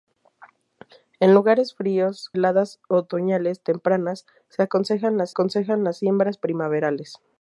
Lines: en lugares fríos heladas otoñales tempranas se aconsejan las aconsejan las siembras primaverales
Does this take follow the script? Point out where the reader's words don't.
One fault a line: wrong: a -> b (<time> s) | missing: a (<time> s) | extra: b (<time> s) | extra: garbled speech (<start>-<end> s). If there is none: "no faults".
no faults